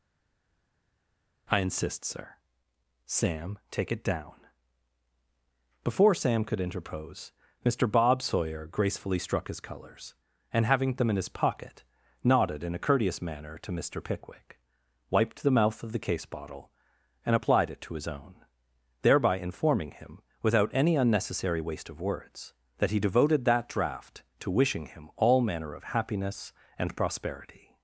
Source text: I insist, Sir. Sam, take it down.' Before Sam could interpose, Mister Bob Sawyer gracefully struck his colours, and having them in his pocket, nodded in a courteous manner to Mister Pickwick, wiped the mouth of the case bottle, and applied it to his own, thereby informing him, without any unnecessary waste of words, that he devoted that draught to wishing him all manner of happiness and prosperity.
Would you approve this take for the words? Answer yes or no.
yes